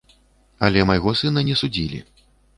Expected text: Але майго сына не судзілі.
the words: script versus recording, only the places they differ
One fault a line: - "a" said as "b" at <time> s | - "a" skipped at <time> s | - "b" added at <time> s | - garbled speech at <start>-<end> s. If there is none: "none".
none